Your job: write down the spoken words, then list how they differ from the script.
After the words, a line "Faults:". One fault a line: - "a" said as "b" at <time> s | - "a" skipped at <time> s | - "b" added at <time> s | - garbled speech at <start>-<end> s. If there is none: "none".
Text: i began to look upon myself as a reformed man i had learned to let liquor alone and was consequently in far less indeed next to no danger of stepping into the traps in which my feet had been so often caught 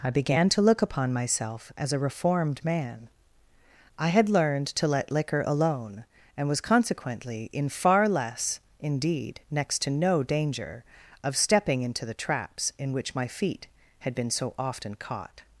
i began to look upon myself as a reformed man i had learned to let liquor alone and was consequently in far less indeed next to no danger of stepping into the traps in which my feet had been so often caught
Faults:
none